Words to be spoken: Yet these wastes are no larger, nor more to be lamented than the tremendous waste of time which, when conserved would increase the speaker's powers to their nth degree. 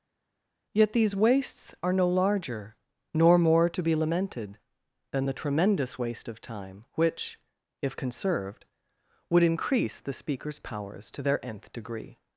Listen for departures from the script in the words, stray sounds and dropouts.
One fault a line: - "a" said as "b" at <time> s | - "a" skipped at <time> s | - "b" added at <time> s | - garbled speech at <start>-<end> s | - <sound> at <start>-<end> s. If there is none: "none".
- "when" said as "if" at 7.8 s